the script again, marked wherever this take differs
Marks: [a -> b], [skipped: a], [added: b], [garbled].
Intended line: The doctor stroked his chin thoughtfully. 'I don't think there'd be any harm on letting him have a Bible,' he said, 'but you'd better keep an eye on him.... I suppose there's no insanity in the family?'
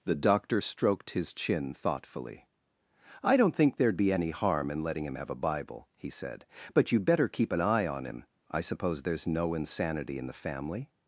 The doctor stroked his chin thoughtfully. 'I don't think there'd be any harm [on -> in] letting him have a Bible,' he said, 'but you'd better keep an eye on him.... I suppose there's no insanity in the family?'